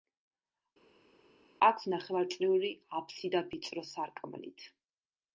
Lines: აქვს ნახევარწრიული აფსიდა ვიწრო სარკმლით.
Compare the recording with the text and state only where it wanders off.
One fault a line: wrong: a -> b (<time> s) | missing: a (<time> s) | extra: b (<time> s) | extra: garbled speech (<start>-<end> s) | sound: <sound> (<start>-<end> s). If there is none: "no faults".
no faults